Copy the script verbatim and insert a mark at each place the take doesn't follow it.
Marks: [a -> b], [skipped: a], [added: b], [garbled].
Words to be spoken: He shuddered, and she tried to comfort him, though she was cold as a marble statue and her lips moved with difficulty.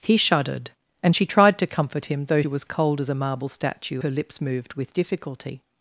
He shuddered, and she tried to comfort him, though [skipped: she] was cold as a marble statue [skipped: and] her lips moved with difficulty.